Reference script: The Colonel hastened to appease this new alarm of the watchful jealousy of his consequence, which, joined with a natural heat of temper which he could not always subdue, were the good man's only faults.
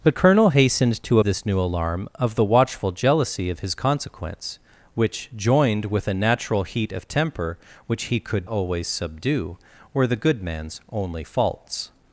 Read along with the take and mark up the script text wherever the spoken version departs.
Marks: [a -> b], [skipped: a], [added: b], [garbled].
The Colonel hastened to [skipped: appease] this new alarm of the watchful jealousy of his consequence, which, joined with a natural heat of temper which he could [skipped: not] always subdue, were the good man's only faults.